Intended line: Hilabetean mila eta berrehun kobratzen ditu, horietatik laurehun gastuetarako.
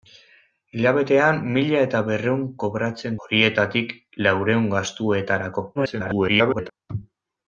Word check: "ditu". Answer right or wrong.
wrong